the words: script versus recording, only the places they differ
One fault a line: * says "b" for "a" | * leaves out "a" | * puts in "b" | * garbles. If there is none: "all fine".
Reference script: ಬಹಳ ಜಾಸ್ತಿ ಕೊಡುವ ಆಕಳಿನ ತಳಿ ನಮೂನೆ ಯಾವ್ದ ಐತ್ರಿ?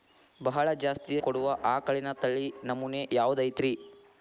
all fine